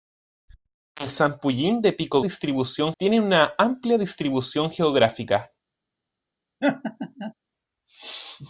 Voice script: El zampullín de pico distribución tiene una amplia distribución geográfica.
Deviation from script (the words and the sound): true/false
true